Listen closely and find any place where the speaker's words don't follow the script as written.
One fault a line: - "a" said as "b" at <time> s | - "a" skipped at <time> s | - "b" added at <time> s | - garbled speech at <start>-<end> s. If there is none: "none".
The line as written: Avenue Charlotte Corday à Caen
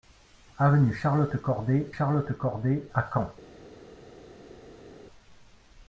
- "Charlotte Corday" added at 1.9 s